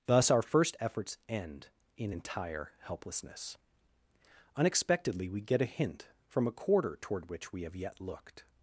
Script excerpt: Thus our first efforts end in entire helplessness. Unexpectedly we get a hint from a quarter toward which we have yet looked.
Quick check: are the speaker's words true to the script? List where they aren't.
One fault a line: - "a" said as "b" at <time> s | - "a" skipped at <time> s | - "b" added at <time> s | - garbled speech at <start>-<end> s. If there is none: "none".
none